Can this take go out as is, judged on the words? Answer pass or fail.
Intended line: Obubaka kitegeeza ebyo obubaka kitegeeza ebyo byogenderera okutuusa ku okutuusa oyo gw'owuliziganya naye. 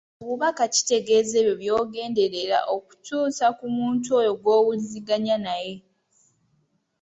fail